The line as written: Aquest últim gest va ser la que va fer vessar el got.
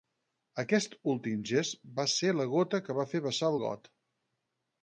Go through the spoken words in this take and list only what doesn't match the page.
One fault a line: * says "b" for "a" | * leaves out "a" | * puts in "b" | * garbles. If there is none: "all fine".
* puts in "gota"